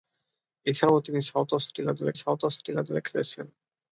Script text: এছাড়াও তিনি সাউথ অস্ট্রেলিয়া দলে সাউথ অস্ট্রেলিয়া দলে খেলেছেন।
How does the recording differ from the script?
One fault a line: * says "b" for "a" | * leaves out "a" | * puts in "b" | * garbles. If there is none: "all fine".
all fine